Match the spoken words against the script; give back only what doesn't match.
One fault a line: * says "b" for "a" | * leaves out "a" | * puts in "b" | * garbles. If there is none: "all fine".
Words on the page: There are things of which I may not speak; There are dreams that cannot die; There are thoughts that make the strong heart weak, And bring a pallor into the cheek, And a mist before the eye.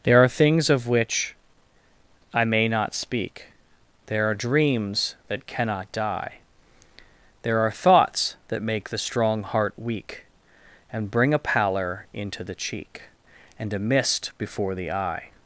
all fine